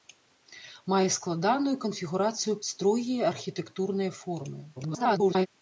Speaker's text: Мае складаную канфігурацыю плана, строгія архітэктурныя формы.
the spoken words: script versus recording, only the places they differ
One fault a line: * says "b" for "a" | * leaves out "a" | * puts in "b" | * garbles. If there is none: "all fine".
* leaves out "плана"
* garbles